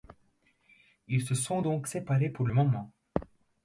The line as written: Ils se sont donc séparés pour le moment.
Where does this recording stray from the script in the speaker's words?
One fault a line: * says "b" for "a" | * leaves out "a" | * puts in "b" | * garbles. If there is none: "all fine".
all fine